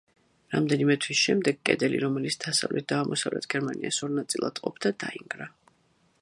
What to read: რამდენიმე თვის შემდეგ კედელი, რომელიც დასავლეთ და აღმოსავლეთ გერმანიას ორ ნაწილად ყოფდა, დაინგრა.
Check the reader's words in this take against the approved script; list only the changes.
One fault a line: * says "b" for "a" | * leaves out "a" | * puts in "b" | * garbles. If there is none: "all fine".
all fine